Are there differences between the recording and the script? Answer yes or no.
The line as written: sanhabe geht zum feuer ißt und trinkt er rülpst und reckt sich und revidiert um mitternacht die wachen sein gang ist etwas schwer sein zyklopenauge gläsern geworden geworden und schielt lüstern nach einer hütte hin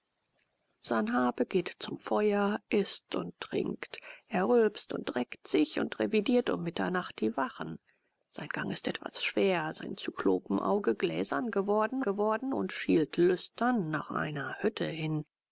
no